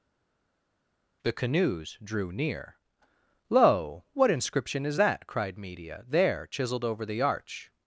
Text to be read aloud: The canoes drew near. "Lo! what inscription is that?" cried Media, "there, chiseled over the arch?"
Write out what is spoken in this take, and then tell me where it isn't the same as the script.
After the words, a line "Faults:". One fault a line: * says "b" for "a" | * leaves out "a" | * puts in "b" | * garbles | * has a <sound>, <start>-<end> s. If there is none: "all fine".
The canoes drew near. "Lo! what inscription is that?" cried Media, "there, chiseled over the arch?"
Faults:
all fine